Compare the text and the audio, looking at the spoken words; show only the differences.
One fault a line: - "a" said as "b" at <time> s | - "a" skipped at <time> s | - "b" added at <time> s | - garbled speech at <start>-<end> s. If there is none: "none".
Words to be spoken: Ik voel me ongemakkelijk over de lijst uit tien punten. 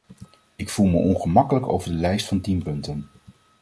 - "uit" said as "van" at 2.3 s